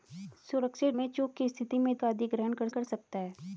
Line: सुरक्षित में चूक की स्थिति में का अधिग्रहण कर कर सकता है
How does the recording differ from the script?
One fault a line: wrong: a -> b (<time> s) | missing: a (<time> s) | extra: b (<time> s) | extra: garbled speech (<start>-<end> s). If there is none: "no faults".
no faults